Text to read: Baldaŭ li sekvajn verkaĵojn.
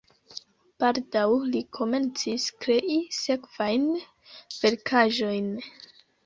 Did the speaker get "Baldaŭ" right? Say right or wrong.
right